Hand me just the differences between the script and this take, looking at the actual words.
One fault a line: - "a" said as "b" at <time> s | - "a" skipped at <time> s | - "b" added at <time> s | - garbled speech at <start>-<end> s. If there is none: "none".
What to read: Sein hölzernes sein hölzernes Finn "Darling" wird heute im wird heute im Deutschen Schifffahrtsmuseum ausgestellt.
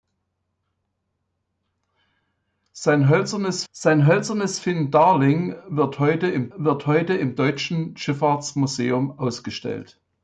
none